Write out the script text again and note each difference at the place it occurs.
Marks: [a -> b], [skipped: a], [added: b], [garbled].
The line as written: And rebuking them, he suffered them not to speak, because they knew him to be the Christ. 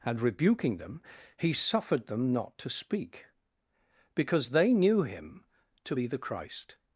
And rebuking them, he suffered them not to speak, because they knew him to be the Christ.